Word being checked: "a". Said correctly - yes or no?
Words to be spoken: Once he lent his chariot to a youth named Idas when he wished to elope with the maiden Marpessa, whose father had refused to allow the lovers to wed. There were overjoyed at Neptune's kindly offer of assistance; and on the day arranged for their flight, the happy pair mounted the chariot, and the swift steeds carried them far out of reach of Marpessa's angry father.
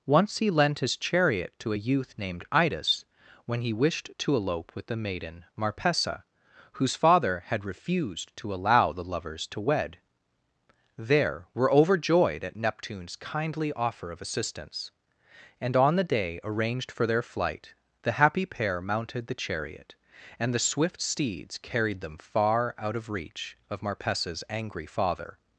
yes